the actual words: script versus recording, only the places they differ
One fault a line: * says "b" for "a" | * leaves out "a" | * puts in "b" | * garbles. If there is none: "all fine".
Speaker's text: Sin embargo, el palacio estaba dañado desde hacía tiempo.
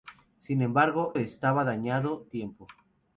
* leaves out "el palacio"
* leaves out "desde hacía"